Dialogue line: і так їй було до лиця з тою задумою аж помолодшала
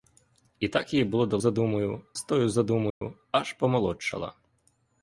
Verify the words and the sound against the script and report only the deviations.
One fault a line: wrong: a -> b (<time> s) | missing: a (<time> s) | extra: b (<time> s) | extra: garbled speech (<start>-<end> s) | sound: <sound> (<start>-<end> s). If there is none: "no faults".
wrong: лиця -> задумою (1.4 s)
sound: dropout (2.9-3.0 s)